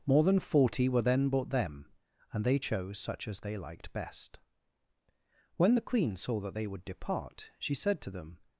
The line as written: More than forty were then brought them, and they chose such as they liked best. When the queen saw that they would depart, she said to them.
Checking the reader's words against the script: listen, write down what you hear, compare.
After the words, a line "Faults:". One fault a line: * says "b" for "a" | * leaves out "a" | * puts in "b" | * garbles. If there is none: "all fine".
More than forty were then brought them, and they chose such as they liked best. When the queen saw that they would depart, she said to them.
Faults:
all fine